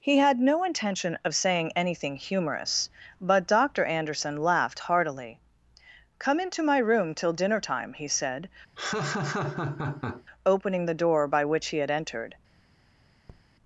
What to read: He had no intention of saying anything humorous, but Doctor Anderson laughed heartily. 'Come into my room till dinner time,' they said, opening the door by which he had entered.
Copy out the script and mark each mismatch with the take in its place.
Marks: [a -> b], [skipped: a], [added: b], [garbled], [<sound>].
He had no intention of saying anything humorous, but Doctor Anderson laughed heartily. 'Come into my room till dinner time,' [they -> he] said, [laugh] opening the door by which he had entered. [tap]